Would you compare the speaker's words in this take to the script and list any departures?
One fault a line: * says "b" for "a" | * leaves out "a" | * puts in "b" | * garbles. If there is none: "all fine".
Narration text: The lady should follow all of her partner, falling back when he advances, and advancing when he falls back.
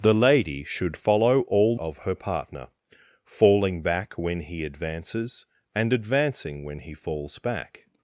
all fine